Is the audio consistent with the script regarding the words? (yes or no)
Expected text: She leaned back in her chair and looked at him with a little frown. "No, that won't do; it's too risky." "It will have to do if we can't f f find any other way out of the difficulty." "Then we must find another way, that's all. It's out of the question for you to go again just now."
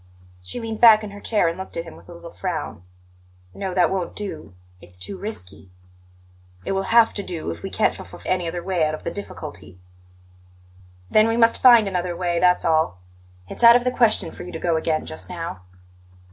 no